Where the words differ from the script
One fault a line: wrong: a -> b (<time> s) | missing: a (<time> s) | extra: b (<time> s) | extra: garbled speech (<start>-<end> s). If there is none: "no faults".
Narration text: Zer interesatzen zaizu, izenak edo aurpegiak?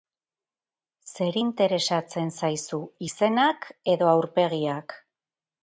no faults